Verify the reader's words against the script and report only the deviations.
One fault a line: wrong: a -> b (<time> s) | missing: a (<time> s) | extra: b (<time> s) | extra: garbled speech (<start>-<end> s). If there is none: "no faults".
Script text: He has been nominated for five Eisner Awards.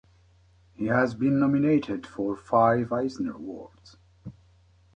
no faults